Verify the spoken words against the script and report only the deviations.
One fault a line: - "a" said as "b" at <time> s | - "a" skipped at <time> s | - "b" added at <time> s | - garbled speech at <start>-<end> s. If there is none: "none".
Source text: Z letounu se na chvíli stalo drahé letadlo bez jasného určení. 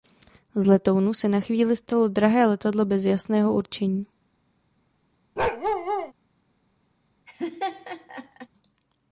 none